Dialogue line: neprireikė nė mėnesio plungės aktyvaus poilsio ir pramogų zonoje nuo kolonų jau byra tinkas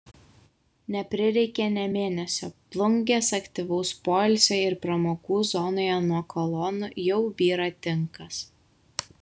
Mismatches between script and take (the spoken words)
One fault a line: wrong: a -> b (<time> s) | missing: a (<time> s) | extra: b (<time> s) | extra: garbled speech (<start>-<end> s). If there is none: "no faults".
no faults